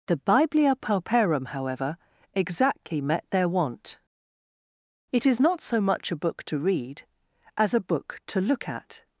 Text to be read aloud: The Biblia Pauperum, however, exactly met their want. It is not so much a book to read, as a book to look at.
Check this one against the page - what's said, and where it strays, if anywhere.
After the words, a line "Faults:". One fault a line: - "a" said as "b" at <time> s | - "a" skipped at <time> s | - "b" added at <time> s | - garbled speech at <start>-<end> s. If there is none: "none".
The Biblia Pauperum, however, exactly met their want. It is not so much a book to read, as a book to look at.
Faults:
none